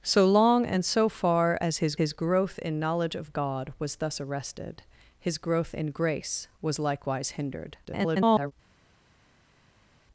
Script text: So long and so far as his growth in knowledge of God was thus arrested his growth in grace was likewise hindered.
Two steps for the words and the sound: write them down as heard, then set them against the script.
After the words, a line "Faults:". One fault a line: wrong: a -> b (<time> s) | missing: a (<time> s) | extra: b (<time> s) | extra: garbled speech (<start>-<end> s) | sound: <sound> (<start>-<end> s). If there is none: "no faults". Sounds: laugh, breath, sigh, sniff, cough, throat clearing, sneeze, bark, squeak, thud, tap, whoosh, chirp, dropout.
So long and so far as his his growth in knowledge of God was thus arrested his growth in grace was likewise hindered. [garbled]
Faults:
extra: his (1.9 s)
extra: garbled speech (7.8-8.5 s)